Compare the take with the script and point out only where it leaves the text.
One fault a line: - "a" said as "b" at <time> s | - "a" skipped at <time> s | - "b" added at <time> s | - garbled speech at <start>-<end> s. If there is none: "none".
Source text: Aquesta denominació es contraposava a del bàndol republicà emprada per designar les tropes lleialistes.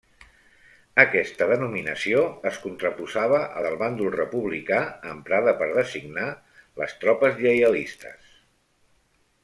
none